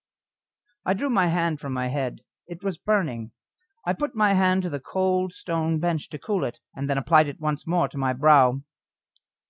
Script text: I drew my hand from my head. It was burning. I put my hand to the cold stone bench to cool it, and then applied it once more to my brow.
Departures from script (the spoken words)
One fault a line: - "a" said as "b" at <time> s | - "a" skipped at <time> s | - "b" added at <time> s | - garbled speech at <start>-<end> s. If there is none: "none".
none